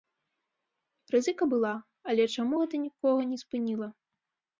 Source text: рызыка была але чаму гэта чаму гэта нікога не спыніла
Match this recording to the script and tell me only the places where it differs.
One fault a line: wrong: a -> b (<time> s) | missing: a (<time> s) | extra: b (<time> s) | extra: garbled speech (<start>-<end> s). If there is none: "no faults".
missing: чаму гэта (2.8 s)